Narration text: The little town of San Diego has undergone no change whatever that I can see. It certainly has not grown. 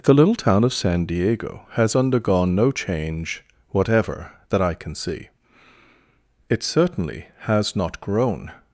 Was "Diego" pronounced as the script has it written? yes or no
yes